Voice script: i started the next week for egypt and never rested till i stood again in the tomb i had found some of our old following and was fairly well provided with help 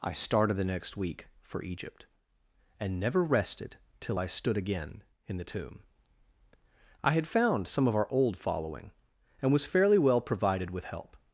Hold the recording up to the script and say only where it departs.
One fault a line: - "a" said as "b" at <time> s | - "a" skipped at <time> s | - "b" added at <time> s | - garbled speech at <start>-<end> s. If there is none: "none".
none